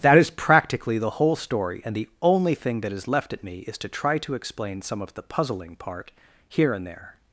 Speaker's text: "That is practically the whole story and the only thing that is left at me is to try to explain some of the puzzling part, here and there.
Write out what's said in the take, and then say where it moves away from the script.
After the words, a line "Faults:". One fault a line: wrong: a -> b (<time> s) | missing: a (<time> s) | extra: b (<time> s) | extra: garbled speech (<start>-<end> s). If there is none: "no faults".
"That is practically the whole story and the only thing that is left at me is to try to explain some of the puzzling part, here and there.
Faults:
no faults